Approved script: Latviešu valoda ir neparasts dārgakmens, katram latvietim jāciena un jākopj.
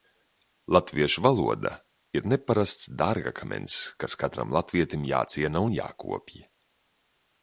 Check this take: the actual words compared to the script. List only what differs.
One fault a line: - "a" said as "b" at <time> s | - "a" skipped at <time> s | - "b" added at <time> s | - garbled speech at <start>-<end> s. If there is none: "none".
- "kas" added at 4.0 s